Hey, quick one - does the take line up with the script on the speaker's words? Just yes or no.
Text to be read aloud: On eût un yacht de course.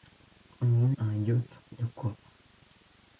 yes